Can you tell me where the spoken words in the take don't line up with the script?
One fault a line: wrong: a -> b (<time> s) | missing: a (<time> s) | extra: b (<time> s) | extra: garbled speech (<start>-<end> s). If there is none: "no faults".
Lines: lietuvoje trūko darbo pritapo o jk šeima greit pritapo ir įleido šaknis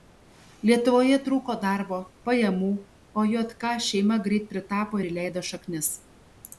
wrong: pritapo -> pajamų (2.3 s)